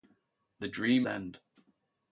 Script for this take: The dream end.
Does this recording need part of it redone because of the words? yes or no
no